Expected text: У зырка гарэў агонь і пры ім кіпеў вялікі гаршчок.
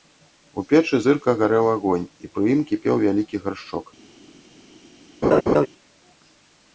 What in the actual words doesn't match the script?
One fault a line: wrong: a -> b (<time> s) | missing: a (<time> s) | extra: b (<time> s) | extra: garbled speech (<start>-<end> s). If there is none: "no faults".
extra: печы (0.7 s)